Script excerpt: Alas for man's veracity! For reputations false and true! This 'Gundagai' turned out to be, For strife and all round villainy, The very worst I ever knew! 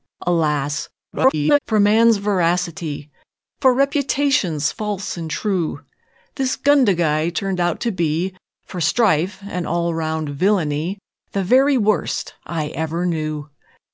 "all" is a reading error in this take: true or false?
false